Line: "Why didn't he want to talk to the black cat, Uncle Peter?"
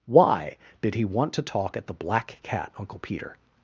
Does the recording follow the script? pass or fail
fail